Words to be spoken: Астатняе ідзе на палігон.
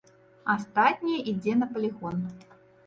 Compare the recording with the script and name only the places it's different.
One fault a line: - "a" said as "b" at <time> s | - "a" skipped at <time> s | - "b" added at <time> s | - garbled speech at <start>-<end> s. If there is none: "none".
none